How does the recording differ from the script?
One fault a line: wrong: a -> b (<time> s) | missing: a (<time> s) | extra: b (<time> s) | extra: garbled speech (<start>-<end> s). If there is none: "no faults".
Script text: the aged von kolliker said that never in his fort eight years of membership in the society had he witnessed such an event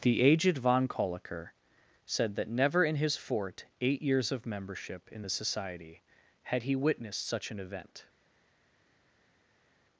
no faults